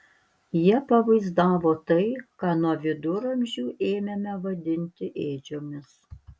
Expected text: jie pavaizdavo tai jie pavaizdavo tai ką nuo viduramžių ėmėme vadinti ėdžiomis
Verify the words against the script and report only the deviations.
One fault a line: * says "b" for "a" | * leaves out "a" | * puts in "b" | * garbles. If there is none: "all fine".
* leaves out "jie pavaizdavo tai"